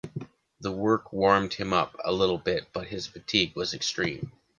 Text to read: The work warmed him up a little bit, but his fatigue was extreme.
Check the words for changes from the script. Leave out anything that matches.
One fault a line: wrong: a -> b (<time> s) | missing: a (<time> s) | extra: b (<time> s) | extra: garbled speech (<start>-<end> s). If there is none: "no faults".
no faults